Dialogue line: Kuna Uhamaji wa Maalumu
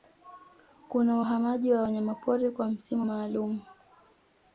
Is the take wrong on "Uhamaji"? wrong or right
right